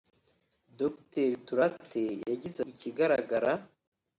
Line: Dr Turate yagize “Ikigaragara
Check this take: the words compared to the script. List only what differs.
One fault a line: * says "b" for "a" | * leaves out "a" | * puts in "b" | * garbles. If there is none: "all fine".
all fine